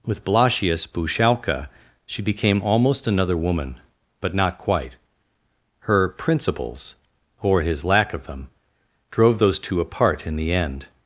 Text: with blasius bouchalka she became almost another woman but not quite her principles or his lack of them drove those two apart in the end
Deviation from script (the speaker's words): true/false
false